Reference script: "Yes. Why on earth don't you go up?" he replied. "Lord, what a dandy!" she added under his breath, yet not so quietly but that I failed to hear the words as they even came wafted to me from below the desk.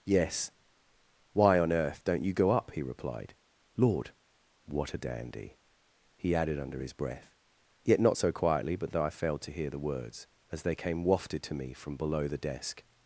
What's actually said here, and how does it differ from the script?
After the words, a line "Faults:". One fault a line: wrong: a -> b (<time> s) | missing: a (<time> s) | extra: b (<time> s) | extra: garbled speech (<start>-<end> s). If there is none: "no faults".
"Yes. Why on earth don't you go up?" he replied. "Lord, what a dandy!" he added under his breath, yet not so quietly but that I failed to hear the words as they came wafted to me from below the desk.
Faults:
wrong: she -> he (6.2 s)
missing: even (10.7 s)